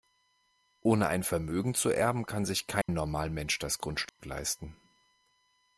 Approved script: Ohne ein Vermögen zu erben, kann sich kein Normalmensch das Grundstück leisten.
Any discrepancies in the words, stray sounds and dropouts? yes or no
yes